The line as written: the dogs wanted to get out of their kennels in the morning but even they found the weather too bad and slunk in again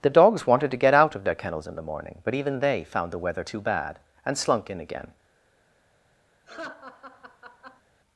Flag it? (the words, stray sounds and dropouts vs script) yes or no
yes